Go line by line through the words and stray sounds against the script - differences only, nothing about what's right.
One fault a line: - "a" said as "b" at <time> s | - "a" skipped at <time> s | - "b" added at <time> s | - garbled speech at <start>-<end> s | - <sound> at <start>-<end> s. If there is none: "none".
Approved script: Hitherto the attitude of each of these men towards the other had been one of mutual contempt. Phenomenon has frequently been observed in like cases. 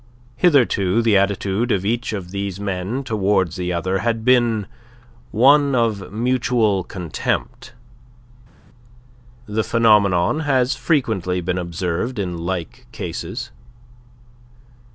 - "The" added at 9.4 s